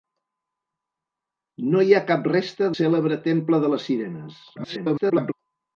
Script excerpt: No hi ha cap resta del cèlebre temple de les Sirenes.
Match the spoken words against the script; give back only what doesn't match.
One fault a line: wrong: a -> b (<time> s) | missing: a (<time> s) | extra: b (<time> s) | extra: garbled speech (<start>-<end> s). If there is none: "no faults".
missing: del (2.7 s)
extra: garbled speech (4.6-5.3 s)